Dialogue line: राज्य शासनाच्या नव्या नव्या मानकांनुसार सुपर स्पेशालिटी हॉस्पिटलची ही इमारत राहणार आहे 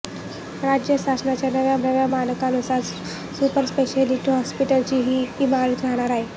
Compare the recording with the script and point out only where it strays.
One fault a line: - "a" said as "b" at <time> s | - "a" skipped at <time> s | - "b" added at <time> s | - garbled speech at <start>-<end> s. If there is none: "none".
none